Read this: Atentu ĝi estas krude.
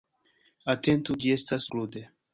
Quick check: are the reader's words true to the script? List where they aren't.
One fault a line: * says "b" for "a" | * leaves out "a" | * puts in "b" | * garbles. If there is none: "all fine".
all fine